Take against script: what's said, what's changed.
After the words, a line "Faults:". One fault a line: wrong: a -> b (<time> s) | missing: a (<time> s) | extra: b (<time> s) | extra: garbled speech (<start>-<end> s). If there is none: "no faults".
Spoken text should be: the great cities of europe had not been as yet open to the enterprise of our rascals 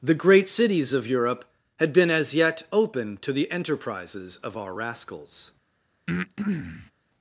the great cities of europe had been as yet open to the enterprises of our rascals
Faults:
missing: not (1.9 s)
wrong: enterprise -> enterprises (3.5 s)